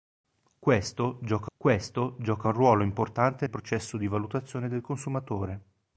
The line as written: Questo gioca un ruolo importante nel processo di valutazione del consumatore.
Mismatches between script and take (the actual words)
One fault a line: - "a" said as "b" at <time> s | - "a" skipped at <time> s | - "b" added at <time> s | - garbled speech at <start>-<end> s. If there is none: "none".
- "questo gioca" added at 1.6 s
- "nel" skipped at 3.4 s